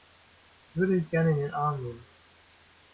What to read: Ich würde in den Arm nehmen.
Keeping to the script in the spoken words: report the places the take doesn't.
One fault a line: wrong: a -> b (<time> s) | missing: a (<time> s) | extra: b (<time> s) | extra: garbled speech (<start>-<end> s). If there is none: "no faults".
extra: dich gerne (1.0 s)